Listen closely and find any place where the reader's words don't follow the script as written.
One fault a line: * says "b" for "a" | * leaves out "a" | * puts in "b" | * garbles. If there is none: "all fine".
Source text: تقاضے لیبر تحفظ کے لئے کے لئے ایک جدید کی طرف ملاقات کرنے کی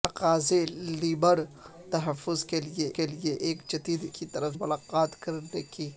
all fine